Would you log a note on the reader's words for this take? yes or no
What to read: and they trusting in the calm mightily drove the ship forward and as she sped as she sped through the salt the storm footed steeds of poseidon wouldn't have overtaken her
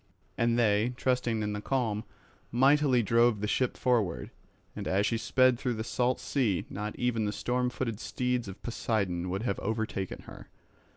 yes